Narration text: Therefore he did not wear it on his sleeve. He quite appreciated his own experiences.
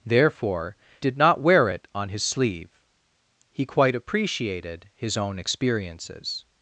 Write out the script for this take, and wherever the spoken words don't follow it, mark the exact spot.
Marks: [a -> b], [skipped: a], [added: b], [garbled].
Therefore [skipped: he] did not wear it on his sleeve. He quite appreciated his own experiences.